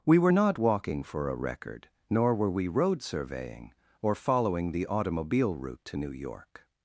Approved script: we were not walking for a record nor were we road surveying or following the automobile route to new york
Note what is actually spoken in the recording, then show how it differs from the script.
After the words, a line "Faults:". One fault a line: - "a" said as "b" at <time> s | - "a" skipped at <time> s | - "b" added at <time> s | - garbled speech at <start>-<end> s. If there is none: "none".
we were not walking for a record nor were we road surveying or following the automobile route to new york
Faults:
none